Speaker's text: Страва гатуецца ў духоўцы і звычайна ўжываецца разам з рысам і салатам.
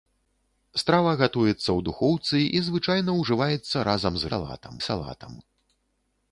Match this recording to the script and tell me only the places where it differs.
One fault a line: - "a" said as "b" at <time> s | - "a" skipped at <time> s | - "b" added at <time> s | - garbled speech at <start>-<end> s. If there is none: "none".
- "рысам" said as "салатам" at 4.3 s